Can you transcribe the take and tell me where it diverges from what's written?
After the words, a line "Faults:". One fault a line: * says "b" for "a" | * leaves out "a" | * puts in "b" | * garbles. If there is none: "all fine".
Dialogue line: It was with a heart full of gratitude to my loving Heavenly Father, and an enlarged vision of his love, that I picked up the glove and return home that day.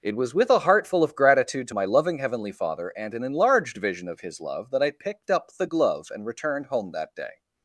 It was with a heart full of gratitude to my loving Heavenly Father, and an enlarged vision of his love, that I picked up the glove and returned home that day.
Faults:
* says "returned" for "return"